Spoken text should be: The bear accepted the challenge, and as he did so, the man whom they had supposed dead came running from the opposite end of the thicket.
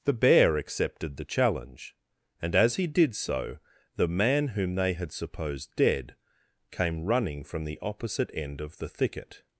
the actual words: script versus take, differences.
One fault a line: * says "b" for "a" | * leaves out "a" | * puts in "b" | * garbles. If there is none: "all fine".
all fine